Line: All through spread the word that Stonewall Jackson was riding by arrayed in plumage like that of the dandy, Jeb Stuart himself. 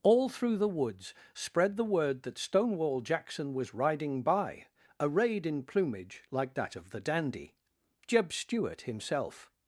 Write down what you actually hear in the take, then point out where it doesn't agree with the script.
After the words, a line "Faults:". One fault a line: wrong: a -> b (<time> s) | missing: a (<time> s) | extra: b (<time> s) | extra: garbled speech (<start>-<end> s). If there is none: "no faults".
All through the woods spread the word that Stonewall Jackson was riding by arrayed in plumage like that of the dandy, Jeb Stuart himself.
Faults:
extra: the woods (0.6 s)